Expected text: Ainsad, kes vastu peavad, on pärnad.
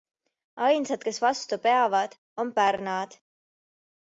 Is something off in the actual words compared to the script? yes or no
no